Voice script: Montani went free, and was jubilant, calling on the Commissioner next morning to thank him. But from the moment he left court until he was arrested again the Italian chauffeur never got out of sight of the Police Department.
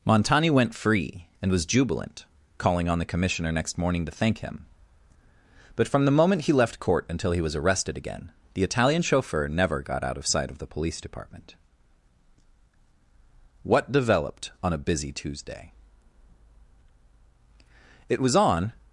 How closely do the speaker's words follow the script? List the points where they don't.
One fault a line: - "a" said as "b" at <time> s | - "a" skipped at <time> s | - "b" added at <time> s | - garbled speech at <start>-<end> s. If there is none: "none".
- "What Developed on a Busy Tuesday It was on" added at 13.6 s